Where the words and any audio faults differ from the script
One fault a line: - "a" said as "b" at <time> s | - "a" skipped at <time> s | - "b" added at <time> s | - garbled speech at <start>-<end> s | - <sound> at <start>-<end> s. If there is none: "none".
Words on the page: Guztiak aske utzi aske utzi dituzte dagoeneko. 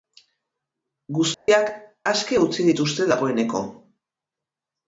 - dropout at 1.3-1.5 s
- "aske utzi" skipped at 2.7 s